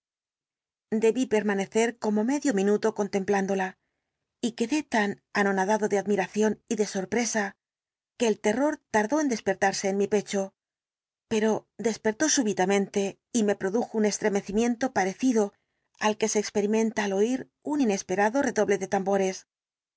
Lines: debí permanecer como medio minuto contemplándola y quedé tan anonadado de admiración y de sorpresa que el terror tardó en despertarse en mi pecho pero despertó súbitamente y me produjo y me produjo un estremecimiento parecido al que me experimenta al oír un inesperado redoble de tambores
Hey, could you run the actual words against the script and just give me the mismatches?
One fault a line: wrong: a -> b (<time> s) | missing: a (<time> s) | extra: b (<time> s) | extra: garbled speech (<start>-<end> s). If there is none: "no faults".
missing: y me produjo (13.9 s)
wrong: me -> se (16.3 s)